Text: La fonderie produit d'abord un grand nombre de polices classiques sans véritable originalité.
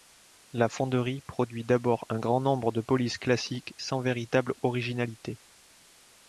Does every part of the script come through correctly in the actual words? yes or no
yes